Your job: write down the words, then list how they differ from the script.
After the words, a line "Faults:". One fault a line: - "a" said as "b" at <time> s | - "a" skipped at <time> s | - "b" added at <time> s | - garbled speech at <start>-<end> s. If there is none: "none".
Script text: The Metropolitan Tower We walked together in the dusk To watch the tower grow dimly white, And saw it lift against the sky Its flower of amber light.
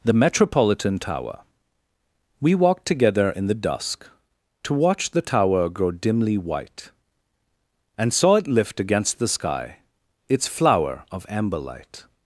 The Metropolitan Tower We walked together in the dusk To watch the tower grow dimly white, And saw it lift against the sky Its flower of amber light.
Faults:
none